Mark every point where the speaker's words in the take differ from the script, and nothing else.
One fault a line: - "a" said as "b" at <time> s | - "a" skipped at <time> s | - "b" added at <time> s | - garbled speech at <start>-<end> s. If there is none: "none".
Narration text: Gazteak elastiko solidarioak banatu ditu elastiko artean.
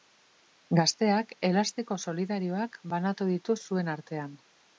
- "elastiko" said as "zuen" at 3.7 s